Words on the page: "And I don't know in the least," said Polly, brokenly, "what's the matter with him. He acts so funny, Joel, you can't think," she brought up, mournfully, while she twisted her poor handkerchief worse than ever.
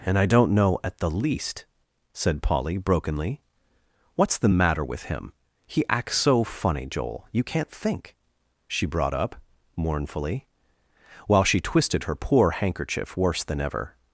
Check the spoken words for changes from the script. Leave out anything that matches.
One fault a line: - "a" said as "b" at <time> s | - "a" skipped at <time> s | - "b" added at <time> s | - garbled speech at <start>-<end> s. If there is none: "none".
- "in" said as "at" at 0.8 s